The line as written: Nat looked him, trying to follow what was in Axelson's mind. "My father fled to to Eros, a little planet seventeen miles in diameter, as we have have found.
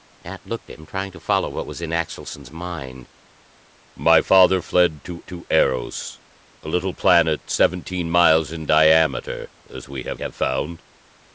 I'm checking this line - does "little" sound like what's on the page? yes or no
yes